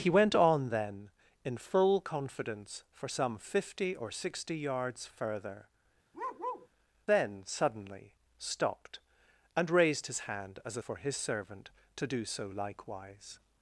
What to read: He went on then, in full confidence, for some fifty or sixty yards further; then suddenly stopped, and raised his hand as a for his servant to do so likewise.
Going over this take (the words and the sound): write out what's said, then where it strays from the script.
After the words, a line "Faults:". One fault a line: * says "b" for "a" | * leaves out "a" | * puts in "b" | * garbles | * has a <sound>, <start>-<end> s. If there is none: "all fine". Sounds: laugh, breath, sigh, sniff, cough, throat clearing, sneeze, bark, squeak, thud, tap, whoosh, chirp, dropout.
He went on then, in full confidence, for some fifty or sixty yards further; then suddenly stopped, and raised his hand as a for his servant to do so likewise.
Faults:
* has a bark, 6.1-6.7 s